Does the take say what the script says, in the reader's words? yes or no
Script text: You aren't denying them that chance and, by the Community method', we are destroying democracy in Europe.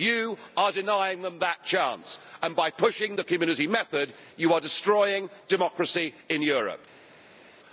no